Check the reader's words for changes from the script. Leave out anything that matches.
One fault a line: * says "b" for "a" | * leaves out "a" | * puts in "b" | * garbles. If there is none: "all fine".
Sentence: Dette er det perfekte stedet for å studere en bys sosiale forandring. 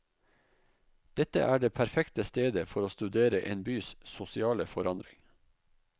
all fine